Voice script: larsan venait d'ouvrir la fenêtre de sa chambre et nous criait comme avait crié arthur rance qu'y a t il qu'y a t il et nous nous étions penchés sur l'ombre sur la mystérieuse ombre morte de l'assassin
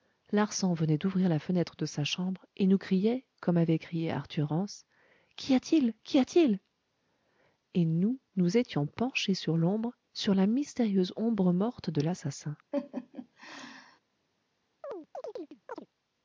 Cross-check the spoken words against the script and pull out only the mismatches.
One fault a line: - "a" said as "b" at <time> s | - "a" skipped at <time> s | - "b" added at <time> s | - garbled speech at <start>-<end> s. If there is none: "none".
none